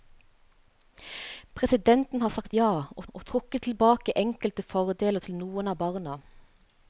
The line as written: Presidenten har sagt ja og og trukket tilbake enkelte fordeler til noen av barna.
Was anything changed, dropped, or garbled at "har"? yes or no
no